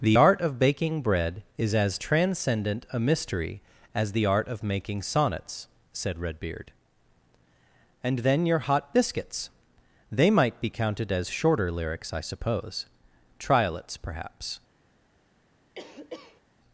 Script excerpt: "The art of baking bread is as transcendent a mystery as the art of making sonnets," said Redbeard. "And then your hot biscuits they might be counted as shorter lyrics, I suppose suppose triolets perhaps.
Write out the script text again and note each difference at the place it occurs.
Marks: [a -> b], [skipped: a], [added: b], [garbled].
"The art of baking bread is as transcendent a mystery as the art of making sonnets," said Redbeard. "And then your hot biscuits they might be counted as shorter lyrics, I suppose [skipped: suppose] triolets perhaps.